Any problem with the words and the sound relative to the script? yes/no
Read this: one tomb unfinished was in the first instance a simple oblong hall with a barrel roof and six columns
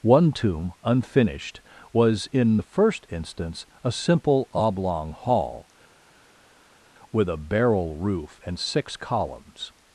no